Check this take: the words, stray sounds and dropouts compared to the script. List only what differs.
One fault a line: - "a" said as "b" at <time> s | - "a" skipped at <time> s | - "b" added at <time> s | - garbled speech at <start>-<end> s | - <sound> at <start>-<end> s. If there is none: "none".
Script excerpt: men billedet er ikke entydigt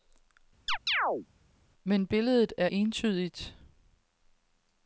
- chirp at 0.7-1.3 s
- "ikke" skipped at 2.7 s